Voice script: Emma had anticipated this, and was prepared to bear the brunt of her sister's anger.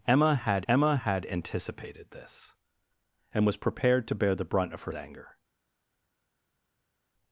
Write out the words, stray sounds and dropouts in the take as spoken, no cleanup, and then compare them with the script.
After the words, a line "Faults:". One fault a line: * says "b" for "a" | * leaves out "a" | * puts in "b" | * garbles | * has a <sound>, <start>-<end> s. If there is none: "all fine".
Emma had emma had anticipated this, and was prepared to bear the brunt of her anger.
Faults:
* puts in "emma had"
* leaves out "sister's"